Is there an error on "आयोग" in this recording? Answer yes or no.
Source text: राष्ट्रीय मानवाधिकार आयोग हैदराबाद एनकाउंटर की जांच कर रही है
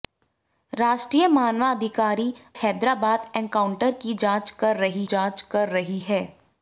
yes